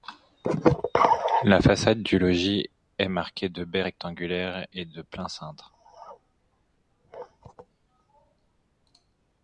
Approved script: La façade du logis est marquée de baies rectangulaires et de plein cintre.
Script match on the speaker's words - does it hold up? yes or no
yes